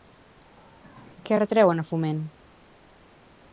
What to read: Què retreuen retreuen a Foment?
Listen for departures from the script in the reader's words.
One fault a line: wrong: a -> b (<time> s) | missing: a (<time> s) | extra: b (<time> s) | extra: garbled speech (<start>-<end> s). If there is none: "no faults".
missing: retreuen (1.8 s)